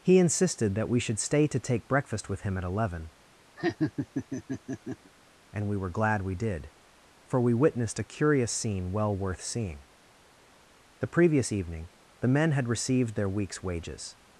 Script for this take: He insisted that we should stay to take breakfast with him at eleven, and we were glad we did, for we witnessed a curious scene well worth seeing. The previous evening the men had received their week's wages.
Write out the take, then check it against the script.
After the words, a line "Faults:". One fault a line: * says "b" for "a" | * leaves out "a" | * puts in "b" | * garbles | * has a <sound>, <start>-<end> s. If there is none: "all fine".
He insisted that we should stay to take breakfast with him at eleven, and we were glad we did, for we witnessed a curious scene well worth seeing. The previous evening the men had received their week's wages.
Faults:
* has a laugh, 3.6-5.1 s